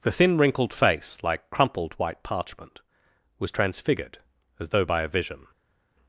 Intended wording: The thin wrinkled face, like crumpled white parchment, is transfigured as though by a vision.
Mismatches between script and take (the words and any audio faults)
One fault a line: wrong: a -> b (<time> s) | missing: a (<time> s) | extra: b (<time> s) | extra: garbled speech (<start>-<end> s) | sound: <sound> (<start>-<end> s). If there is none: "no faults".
wrong: is -> was (3.4 s)